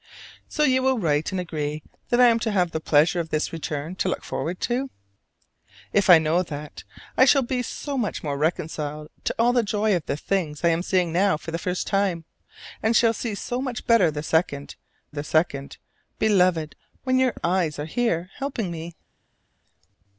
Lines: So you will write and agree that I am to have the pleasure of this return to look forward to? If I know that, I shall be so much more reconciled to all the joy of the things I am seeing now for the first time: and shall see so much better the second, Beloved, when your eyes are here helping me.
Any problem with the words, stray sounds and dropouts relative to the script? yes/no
yes